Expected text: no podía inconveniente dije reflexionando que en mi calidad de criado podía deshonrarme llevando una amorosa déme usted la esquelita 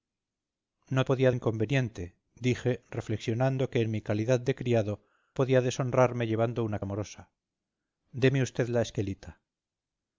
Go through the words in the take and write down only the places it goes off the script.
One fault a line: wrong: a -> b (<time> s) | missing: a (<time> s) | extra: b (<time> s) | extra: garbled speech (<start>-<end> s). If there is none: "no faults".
no faults